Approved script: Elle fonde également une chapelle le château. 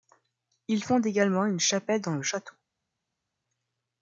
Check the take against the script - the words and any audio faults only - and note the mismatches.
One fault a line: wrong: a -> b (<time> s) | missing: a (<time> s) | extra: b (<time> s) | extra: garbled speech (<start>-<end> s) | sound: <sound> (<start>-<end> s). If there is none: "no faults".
wrong: Elle -> Il (0.7 s)
extra: dans (2.0 s)